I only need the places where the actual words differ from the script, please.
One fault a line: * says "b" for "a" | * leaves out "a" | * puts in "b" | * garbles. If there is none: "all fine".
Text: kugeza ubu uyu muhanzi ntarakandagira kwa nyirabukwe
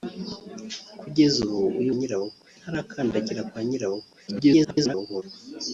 * says "nyirabukwe" for "muhanzi"
* garbles